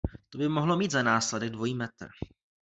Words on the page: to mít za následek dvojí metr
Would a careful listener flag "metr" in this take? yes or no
no